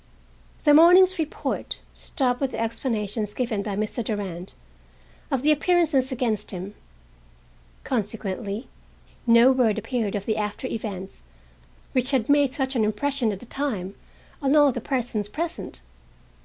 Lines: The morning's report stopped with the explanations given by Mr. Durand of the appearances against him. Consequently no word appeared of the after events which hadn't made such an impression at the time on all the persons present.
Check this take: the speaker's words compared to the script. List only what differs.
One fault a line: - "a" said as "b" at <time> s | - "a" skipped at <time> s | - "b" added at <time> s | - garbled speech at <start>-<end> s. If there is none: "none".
- "hadn't" said as "had" at 12.1 s